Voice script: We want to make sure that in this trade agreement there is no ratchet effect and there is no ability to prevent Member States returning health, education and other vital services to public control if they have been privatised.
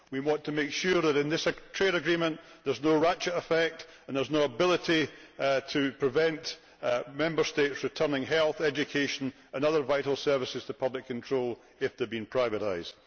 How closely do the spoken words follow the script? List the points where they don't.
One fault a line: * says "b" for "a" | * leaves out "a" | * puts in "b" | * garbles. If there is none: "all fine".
all fine